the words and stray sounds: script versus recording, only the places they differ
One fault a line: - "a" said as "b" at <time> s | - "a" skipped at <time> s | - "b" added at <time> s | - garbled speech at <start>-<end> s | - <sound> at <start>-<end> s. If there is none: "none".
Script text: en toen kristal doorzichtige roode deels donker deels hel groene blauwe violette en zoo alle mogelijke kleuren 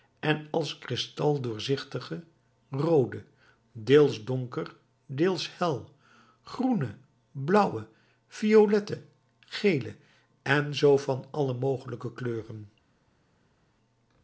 - "toen" said as "als" at 0.5 s
- "gele" added at 9.4 s
- "van" added at 11.0 s